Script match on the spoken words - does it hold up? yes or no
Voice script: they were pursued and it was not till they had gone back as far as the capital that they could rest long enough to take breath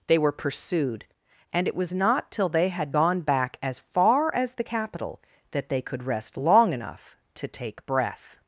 yes